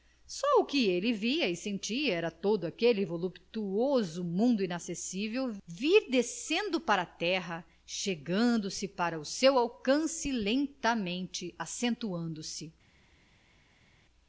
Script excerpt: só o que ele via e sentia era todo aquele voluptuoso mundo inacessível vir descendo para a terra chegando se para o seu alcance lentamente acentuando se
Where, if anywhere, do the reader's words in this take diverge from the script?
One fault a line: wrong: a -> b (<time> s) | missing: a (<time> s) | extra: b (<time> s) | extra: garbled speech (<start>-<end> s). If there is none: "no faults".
no faults